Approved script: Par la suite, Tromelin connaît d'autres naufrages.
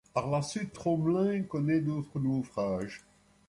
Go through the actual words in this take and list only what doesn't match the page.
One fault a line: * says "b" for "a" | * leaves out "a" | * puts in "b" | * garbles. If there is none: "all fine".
all fine